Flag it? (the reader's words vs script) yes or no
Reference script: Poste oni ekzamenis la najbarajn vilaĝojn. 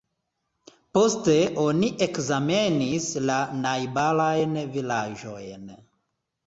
no